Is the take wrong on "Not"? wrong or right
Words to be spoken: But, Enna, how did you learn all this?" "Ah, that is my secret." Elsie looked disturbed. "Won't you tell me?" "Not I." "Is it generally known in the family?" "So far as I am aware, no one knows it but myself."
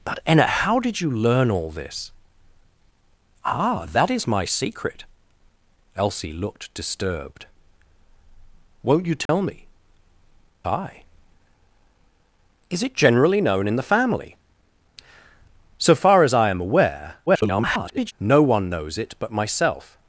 wrong